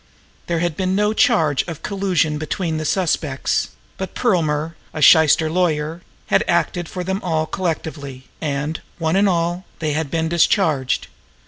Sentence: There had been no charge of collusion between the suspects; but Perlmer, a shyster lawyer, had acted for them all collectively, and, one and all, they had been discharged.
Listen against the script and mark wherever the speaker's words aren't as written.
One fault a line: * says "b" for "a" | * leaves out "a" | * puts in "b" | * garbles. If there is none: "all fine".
all fine